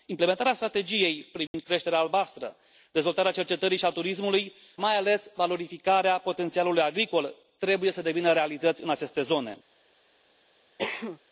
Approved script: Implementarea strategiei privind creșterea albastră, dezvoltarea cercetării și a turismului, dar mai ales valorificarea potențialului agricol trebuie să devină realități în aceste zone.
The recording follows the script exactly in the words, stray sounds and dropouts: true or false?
false